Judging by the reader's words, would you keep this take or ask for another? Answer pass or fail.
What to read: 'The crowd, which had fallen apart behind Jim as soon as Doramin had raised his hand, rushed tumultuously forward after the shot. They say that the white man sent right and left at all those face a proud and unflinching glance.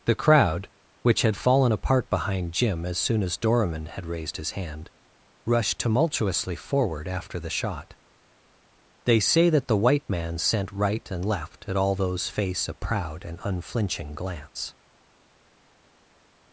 pass